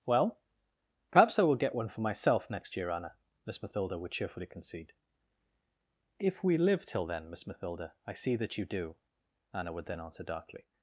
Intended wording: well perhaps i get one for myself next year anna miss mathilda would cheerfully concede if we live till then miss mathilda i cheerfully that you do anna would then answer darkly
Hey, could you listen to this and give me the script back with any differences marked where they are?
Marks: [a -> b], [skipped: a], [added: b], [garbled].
well perhaps i [added: will] get one for myself next year anna miss mathilda would cheerfully concede if we live till then miss mathilda i [cheerfully -> see] that you do anna would then answer darkly